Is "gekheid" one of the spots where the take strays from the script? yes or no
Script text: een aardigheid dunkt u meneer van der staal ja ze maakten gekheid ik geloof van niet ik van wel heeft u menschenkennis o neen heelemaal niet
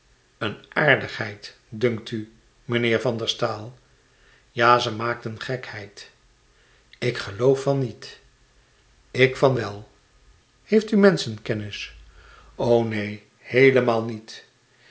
no